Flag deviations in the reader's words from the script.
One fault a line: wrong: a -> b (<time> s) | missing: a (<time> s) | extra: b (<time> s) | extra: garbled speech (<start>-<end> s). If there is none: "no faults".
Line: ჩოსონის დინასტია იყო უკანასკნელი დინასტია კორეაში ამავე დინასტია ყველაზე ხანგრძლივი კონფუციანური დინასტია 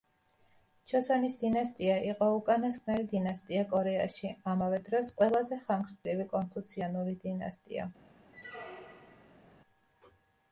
wrong: დინასტია -> დროს (4.9 s)